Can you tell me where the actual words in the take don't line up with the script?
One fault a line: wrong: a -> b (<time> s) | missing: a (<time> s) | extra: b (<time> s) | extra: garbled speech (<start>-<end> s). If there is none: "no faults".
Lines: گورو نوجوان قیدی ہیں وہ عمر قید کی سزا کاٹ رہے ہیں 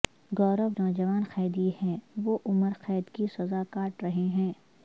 no faults